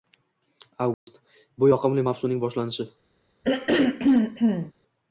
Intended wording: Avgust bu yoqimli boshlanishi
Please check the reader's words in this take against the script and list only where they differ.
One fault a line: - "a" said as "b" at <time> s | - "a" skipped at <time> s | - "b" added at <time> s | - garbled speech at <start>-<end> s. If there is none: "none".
- "mavsumning" added at 2.1 s